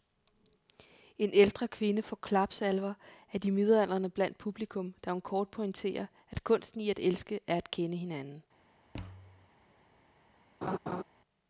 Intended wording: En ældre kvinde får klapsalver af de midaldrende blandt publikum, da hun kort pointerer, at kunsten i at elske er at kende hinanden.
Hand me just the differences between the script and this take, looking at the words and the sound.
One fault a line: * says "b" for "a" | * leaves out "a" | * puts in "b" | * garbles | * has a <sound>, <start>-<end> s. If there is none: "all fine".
* has a thud, 8.9-9.5 s
* has a laugh, 10.6-11.0 s